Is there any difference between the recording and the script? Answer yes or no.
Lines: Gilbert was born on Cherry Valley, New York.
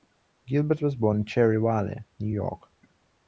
yes